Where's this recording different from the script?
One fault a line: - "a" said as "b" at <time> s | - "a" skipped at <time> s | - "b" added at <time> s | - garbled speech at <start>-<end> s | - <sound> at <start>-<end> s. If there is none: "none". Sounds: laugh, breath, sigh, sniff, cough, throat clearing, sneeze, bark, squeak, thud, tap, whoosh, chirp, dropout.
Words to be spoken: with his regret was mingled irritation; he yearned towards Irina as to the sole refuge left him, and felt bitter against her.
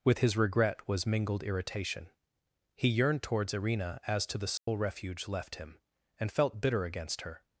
- dropout at 4.6-4.7 s